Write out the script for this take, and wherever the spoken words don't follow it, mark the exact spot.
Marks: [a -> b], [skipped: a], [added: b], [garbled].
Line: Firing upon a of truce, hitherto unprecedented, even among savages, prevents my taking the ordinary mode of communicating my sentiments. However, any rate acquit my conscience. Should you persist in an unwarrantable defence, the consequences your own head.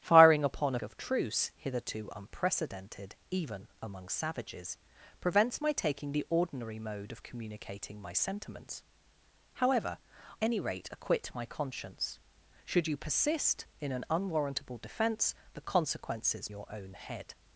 Firing upon a of truce, hitherto unprecedented, even among savages, prevents my taking the ordinary mode of communicating my sentiments. However, any rate acquit my conscience. Should you persist in an unwarrantable defence, the consequences your own head.